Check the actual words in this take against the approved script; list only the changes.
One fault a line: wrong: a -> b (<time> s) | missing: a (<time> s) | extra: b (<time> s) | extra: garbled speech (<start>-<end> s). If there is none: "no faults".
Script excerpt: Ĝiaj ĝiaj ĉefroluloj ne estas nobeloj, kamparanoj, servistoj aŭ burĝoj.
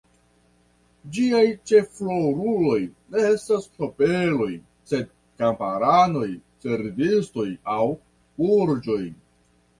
missing: ĝiaj (1.4 s)
extra: sed (4.9 s)